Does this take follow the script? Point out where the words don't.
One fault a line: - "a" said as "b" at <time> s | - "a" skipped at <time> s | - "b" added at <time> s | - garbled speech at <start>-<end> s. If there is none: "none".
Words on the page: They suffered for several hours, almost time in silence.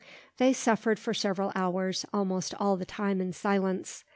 - "all the" added at 2.6 s